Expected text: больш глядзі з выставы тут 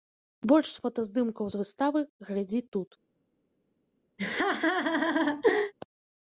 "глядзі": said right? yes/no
no